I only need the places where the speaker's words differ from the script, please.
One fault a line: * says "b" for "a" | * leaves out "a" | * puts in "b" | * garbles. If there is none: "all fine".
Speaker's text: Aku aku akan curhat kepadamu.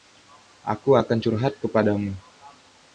* leaves out "aku"